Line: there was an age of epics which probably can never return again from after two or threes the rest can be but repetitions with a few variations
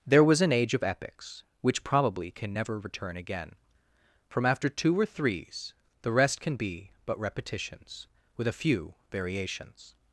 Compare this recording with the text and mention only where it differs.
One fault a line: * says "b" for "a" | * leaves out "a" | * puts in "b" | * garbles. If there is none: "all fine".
all fine